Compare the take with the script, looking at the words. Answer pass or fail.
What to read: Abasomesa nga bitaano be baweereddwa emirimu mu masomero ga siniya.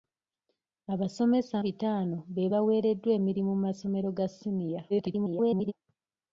fail